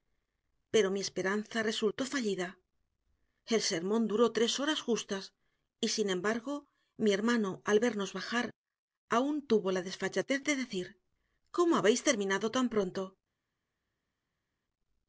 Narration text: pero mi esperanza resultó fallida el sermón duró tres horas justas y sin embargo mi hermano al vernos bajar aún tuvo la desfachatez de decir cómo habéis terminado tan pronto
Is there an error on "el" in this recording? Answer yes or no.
no